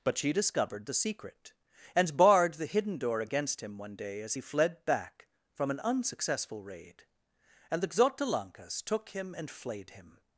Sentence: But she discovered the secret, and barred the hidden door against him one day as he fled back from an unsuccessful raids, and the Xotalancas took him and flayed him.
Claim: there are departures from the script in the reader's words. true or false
true